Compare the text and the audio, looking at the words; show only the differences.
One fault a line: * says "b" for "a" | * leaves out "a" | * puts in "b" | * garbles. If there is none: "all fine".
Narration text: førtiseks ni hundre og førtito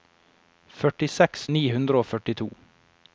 all fine